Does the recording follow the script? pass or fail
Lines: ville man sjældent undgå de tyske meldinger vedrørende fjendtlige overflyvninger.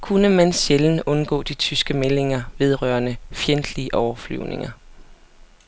fail